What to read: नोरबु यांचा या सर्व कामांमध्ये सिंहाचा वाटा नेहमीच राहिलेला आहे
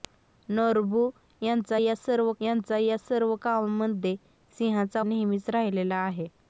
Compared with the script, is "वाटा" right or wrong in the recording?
wrong